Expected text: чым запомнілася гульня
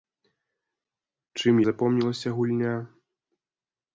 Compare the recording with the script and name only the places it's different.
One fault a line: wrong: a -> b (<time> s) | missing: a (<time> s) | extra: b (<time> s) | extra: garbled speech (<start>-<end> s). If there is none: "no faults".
no faults